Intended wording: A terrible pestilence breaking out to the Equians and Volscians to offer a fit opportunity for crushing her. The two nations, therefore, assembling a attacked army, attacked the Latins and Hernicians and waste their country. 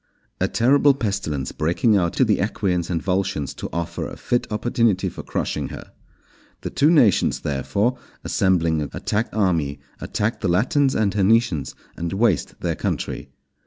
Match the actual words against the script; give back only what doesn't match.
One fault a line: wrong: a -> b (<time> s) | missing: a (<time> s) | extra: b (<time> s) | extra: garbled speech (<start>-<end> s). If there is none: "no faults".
no faults